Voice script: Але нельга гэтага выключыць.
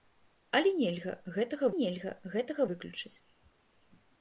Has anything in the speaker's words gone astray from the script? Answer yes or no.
yes